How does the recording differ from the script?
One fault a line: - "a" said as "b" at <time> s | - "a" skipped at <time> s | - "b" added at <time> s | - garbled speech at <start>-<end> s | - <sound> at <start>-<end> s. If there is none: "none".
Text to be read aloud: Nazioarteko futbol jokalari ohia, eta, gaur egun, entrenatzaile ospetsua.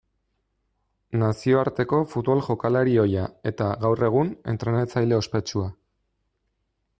none